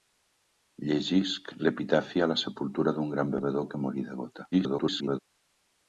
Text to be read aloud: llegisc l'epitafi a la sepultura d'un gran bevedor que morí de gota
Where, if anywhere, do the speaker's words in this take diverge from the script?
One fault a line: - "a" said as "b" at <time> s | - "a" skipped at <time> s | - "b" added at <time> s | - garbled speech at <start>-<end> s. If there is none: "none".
- garbled speech at 4.5-5.2 s